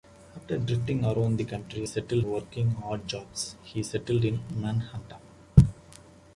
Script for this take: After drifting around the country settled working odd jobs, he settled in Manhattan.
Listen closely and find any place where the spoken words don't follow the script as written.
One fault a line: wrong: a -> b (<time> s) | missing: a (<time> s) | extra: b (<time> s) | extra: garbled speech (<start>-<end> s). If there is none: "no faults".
no faults